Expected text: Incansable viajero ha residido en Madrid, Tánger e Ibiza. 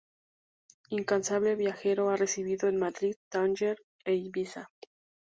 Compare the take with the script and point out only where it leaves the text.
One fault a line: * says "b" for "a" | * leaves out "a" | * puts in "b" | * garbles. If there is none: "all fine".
all fine